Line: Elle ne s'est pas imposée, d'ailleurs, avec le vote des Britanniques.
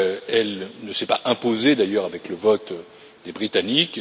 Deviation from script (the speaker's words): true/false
false